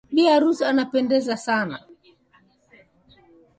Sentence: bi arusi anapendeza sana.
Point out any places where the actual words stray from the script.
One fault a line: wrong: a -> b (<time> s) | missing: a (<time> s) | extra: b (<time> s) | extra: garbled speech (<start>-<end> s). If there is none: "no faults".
no faults